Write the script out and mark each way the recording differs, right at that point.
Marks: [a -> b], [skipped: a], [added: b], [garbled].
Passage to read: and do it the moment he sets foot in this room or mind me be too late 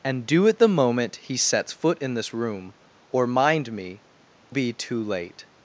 and do it the moment he sets foot in this room or mind me be too late